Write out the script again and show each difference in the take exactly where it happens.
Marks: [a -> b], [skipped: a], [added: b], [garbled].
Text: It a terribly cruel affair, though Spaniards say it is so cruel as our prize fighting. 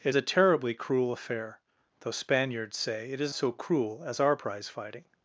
It a terribly cruel affair, though Spaniards say it is so cruel as our prize fighting.